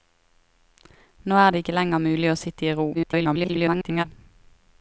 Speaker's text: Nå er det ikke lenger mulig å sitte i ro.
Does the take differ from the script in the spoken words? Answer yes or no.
yes